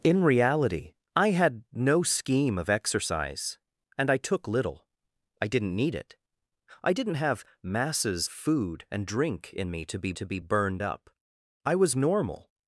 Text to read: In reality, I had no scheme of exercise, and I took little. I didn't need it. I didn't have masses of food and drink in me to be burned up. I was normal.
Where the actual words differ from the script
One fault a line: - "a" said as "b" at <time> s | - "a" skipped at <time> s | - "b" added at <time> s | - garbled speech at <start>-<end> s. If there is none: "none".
- "of" skipped at 8.3 s
- "to be" added at 10.1 s